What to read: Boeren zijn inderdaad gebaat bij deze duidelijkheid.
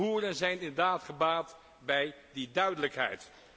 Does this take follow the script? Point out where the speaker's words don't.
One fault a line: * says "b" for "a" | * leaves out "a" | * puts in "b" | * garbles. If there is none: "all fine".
* says "die" for "deze"